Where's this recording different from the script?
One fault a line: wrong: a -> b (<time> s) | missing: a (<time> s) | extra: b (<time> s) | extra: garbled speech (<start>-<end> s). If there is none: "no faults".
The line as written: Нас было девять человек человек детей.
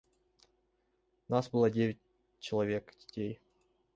missing: человек (3.0 s)